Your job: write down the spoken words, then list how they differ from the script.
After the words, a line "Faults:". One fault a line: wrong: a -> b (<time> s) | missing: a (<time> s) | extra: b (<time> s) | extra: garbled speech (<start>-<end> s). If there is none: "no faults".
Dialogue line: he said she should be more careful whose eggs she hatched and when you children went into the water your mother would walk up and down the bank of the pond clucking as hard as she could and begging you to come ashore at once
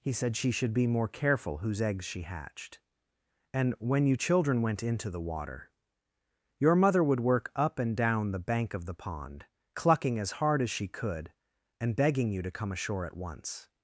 he said she should be more careful whose eggs she hatched and when you children went into the water your mother would work up and down the bank of the pond clucking as hard as she could and begging you to come ashore at once
Faults:
wrong: walk -> work (7.2 s)